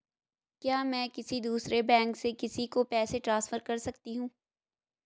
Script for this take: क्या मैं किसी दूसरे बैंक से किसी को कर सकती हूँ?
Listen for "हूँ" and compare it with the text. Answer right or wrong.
right